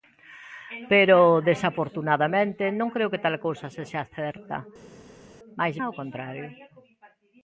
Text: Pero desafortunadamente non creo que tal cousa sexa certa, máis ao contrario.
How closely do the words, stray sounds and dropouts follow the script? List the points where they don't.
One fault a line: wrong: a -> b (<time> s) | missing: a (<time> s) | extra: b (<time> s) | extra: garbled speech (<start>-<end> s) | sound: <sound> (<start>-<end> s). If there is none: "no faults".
no faults